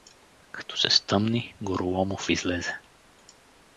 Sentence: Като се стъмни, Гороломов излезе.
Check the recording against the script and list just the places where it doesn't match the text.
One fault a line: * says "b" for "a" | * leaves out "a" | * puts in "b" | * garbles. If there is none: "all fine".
all fine